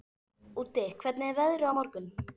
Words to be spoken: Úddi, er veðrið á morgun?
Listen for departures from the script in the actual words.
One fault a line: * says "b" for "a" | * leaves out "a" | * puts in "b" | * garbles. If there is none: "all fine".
* puts in "hvernig"